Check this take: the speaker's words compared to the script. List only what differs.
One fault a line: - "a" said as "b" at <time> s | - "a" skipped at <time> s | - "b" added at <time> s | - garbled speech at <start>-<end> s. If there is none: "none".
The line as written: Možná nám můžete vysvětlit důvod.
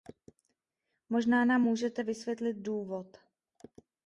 none